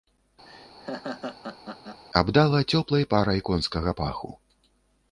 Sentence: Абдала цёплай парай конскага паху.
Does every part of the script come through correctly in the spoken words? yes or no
yes